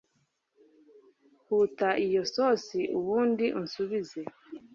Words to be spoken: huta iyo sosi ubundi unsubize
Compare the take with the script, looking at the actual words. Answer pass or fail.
pass